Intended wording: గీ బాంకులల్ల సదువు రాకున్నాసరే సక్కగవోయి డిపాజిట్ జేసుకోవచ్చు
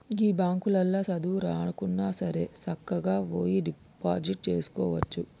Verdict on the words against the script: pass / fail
pass